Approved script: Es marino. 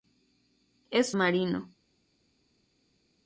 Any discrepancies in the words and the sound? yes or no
no